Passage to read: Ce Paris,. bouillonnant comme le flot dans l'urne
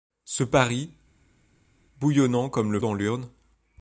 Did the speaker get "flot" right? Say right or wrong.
wrong